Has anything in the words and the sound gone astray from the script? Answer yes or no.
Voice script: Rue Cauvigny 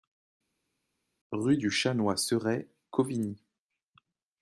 yes